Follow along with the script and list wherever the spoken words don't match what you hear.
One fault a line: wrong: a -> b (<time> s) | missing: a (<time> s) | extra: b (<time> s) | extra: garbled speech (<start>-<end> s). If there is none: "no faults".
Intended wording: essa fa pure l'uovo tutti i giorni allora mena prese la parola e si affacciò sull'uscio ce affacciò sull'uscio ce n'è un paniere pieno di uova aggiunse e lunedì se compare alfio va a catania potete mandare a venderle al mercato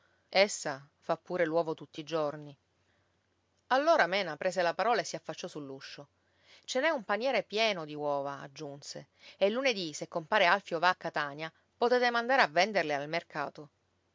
missing: affacciò sull'uscio ce (6.8 s)